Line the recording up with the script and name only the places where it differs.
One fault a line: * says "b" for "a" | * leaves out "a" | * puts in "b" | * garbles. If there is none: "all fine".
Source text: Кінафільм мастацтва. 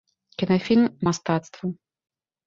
all fine